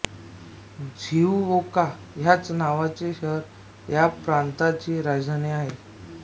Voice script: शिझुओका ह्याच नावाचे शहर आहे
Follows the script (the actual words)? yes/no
no